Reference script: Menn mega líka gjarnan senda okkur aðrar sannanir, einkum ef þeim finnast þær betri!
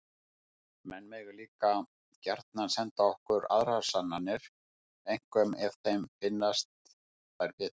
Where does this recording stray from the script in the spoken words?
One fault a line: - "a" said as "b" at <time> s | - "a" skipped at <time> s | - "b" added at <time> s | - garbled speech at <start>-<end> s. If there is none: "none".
none